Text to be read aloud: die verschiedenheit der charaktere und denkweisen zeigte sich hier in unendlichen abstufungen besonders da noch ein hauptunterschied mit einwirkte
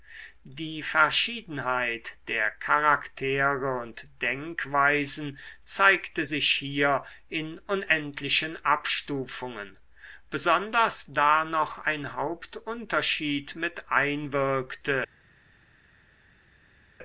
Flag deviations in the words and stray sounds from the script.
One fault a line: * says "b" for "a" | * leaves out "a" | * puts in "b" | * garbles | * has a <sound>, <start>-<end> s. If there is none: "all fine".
all fine